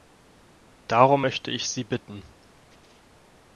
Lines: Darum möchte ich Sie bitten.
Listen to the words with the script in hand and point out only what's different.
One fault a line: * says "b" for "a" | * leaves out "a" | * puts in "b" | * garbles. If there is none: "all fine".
all fine